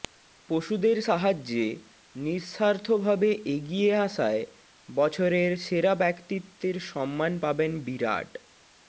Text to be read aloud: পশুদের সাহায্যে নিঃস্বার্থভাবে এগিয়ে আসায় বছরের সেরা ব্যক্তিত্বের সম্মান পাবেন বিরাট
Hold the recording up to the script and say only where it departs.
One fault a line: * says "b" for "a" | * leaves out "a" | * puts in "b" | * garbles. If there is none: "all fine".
all fine